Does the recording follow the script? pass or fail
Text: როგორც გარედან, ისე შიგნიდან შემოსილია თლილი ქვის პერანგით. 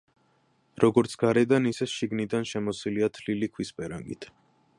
pass